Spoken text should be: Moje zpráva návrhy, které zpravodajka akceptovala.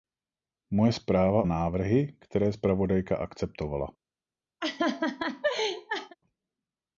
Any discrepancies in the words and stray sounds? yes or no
yes